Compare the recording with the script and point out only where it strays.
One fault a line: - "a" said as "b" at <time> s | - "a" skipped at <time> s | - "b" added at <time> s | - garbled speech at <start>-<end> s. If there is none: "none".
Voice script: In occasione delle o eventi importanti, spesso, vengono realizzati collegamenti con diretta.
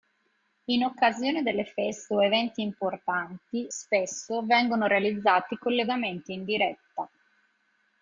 - "feste" added at 1.6 s
- "con" said as "in" at 6.3 s